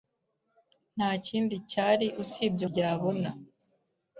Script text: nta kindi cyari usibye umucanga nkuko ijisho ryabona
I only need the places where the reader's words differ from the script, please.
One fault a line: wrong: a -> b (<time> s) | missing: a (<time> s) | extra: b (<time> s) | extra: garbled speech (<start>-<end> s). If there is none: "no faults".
missing: umucanga nkuko ijisho (2.6 s)